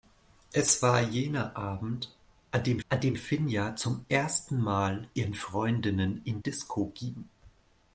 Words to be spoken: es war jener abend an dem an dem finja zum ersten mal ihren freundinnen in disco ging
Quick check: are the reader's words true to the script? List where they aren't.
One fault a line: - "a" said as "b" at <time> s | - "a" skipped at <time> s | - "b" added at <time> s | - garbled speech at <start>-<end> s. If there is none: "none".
none